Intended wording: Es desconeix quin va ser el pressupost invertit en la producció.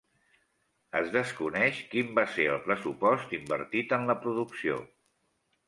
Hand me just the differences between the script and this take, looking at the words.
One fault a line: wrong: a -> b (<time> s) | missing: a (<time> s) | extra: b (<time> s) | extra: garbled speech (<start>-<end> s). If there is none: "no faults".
no faults